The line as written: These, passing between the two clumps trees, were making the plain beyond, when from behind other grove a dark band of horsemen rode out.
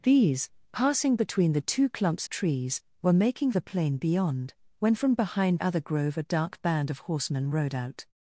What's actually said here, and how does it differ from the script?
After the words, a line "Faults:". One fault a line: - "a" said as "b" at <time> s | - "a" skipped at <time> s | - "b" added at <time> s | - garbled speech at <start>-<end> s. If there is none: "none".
These, passing between the two clumps trees, were making the plain beyond, when from behind other grove a dark band of horsemen rode out.
Faults:
none